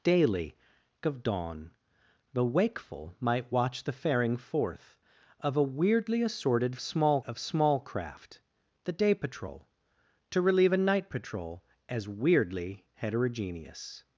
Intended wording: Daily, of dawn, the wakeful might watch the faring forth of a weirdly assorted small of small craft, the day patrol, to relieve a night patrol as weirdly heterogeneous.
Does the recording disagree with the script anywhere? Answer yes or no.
no